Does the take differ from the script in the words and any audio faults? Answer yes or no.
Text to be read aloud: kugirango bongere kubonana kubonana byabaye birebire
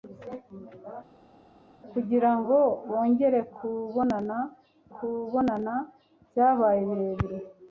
no